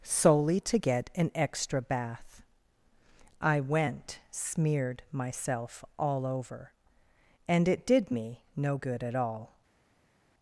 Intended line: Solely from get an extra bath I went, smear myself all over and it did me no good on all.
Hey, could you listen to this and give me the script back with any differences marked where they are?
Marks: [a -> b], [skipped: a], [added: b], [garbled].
Solely [from -> to] get an extra bath I went, [smear -> smeared] myself all over and it did me no good [on -> at] all.